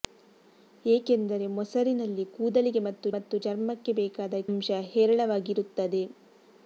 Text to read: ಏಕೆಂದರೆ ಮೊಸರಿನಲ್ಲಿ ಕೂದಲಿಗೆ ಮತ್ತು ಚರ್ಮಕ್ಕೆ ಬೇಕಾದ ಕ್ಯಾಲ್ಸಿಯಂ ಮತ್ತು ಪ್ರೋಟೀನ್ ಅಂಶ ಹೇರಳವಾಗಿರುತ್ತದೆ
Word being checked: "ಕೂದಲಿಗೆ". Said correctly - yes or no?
yes